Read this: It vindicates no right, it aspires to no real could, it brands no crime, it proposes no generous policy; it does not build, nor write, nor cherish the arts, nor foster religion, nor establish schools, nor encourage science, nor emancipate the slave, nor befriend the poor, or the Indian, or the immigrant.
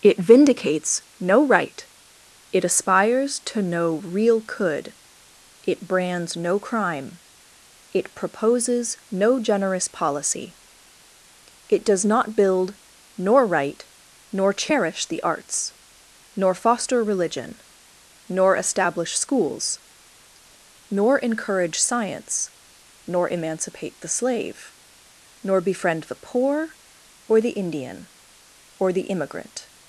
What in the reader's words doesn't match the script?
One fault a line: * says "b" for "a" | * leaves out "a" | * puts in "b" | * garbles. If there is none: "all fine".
all fine